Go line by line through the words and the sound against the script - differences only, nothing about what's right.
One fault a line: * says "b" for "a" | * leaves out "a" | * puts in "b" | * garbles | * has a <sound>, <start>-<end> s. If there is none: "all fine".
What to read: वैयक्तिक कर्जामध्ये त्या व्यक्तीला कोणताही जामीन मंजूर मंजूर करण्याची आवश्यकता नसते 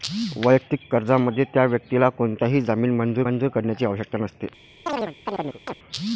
* has a chirp, 4.9-5.8 s